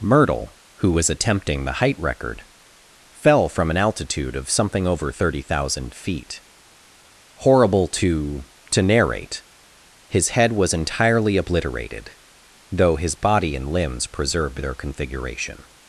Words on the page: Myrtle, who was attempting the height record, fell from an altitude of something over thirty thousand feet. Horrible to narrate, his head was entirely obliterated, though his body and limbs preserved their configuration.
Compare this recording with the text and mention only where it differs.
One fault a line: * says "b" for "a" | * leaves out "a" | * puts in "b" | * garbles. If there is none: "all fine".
* puts in "to"